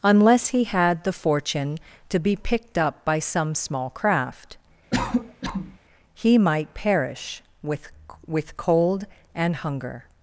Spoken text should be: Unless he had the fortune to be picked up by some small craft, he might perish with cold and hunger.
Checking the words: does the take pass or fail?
fail